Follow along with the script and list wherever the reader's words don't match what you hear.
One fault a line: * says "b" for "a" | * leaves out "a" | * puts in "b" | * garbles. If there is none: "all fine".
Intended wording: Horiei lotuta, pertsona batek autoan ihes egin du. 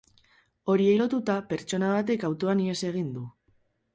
all fine